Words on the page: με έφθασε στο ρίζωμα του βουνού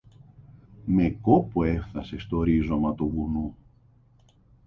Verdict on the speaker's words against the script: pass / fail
fail